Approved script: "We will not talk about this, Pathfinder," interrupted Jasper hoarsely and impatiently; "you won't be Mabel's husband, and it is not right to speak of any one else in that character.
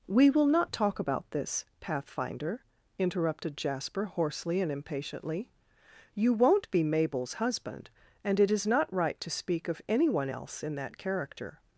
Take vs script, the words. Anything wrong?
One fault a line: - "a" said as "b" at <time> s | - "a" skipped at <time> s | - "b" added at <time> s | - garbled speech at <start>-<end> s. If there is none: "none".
none